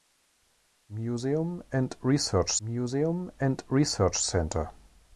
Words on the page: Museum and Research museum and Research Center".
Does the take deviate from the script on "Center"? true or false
false